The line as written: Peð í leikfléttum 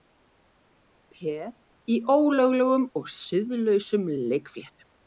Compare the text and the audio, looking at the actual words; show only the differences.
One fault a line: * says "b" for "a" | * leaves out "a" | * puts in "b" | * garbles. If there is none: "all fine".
* puts in "ólöglegum og siðlausum"